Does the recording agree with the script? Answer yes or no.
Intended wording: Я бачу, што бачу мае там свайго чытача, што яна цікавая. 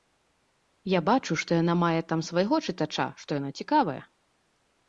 no